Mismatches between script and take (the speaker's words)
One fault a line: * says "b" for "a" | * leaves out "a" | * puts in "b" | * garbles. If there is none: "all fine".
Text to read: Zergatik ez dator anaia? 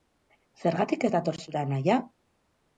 * puts in "zure"